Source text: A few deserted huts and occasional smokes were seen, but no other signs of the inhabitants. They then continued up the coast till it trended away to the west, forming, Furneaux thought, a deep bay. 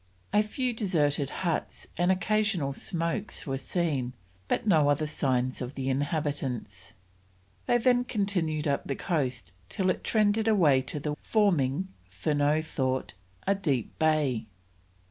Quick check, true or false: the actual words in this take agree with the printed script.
false